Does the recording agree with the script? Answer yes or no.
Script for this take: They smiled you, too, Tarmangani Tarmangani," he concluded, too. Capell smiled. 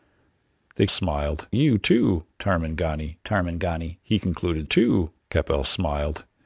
yes